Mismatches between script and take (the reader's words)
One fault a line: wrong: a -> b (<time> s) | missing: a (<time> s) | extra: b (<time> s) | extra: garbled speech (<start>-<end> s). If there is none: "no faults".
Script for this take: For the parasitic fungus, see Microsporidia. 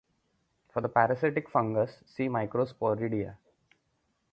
no faults